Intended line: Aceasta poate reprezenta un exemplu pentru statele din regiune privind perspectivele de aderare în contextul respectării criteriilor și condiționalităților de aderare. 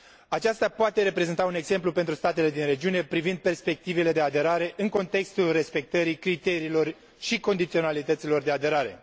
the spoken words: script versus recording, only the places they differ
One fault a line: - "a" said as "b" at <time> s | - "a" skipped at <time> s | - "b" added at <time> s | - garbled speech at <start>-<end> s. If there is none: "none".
none